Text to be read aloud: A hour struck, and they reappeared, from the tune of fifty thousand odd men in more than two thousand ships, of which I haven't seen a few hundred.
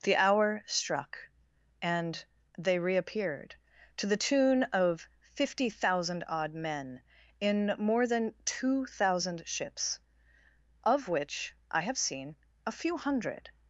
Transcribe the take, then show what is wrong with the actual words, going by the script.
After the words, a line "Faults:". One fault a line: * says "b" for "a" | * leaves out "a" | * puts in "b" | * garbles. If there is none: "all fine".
The hour struck, and they reappeared, to the tune of fifty thousand odd men in more than two thousand ships, of which I have seen a few hundred.
Faults:
* says "The" for "A"
* says "to" for "from"
* says "have" for "haven't"